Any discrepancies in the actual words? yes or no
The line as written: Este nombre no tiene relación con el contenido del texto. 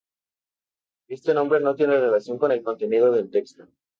no